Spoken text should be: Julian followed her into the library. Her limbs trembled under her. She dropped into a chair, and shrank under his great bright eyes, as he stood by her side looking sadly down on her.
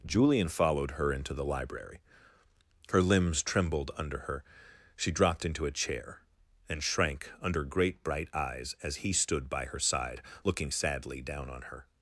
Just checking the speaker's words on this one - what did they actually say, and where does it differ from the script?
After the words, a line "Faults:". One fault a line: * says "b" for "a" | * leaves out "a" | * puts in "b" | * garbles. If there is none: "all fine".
Julian followed her into the library. Her limbs trembled under her. She dropped into a chair, and shrank under great bright eyes, as he stood by her side looking sadly down on her.
Faults:
* leaves out "his"